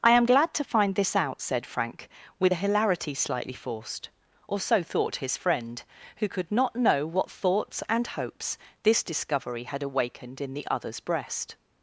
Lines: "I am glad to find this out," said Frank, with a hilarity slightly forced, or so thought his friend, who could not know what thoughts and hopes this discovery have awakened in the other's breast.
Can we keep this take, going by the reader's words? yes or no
no